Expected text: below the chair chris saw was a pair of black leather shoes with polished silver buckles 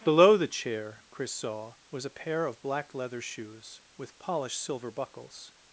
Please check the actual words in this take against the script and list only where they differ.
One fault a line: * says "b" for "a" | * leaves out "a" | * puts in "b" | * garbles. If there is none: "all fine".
all fine